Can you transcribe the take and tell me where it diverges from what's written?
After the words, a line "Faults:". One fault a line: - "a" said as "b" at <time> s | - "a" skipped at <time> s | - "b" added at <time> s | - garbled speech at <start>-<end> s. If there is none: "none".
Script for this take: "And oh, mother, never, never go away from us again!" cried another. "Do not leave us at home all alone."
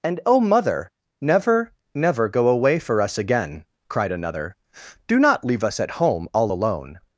"And oh, mother, never, never go away for us again!" cried another. "Do not leave us at home all alone."
Faults:
- "from" said as "for" at 2.8 s